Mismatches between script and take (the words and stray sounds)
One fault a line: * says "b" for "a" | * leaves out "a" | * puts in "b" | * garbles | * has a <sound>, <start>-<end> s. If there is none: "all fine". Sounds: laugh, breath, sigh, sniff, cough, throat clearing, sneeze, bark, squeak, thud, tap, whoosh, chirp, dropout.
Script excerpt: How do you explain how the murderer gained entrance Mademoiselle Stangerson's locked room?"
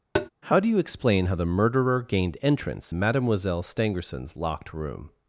* has a tap, 0.1-0.3 s